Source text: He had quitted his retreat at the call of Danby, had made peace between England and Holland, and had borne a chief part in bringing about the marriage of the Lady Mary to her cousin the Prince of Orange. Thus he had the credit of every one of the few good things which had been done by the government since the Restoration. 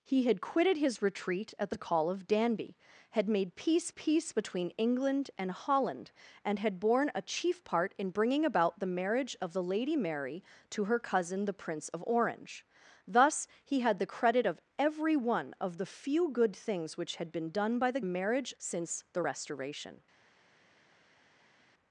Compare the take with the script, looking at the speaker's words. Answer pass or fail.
fail